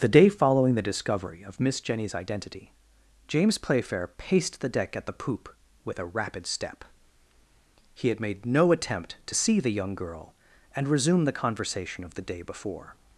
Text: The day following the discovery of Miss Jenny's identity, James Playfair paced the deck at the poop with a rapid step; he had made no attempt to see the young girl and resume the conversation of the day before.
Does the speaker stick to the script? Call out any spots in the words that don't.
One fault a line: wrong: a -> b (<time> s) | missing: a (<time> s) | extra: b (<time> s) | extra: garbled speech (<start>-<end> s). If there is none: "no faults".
no faults